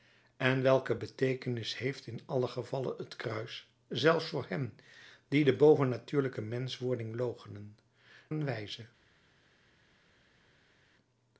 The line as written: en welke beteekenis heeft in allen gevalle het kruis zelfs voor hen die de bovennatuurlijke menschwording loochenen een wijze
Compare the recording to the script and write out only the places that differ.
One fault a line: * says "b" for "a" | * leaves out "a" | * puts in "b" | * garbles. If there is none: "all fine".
all fine